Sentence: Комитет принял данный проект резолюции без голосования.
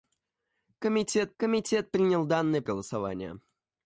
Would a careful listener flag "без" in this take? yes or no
yes